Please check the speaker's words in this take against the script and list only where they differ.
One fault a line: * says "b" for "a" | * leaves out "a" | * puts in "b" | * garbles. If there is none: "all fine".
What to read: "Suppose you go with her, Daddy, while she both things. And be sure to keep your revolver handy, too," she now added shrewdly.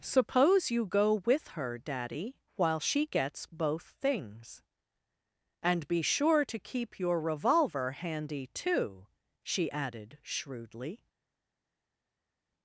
* puts in "gets"
* leaves out "now"